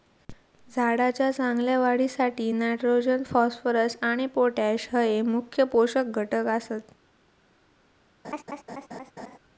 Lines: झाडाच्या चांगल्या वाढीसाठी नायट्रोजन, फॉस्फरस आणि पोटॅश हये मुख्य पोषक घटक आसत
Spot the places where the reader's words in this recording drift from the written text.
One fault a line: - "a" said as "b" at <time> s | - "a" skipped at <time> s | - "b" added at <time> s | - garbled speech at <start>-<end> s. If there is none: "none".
none